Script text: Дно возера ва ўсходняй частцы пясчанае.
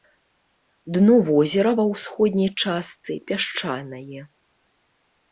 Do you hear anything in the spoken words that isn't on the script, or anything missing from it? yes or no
no